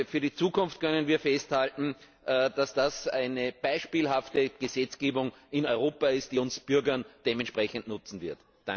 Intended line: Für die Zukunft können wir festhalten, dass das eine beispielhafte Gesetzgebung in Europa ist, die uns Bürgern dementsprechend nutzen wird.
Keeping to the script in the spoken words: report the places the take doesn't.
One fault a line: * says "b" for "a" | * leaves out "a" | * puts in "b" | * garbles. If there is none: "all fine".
all fine